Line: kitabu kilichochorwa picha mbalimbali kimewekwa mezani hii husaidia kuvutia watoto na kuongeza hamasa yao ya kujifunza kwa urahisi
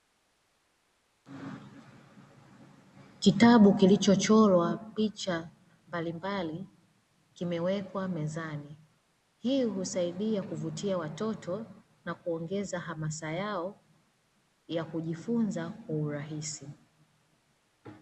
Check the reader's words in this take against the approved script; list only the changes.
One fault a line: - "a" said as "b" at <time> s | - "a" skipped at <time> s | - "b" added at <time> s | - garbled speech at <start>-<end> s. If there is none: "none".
none